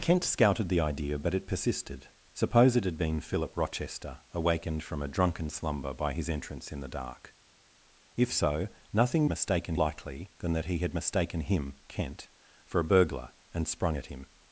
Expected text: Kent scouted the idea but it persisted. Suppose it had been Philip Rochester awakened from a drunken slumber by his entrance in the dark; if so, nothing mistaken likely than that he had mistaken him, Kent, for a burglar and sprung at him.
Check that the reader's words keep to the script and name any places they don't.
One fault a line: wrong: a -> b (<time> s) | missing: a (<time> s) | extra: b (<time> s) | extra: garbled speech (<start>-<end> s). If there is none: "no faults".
no faults